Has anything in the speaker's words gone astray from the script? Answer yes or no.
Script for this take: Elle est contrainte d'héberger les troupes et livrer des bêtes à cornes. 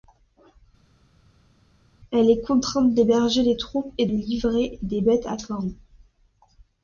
no